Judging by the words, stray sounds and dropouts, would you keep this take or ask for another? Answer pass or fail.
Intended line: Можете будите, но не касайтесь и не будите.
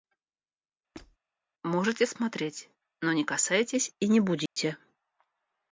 fail